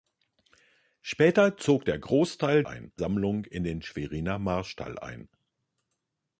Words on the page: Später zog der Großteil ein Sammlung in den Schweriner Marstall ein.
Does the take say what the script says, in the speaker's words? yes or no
yes